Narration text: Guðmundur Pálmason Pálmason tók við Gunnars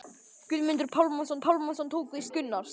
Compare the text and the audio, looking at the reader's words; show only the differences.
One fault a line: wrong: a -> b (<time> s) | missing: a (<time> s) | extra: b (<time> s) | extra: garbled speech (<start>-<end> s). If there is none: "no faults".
no faults